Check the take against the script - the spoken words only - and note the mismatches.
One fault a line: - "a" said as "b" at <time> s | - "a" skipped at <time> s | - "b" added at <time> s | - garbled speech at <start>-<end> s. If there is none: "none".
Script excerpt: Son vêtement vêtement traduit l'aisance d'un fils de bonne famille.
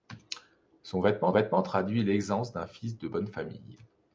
none